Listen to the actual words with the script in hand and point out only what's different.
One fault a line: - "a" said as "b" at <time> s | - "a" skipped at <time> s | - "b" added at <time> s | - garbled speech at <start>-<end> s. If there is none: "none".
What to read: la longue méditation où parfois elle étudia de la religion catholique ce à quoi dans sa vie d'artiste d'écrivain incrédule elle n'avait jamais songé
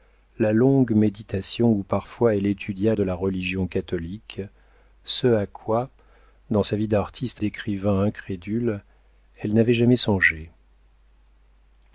none